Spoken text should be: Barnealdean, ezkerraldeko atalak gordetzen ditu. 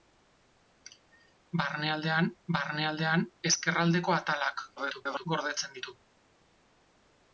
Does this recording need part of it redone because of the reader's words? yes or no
yes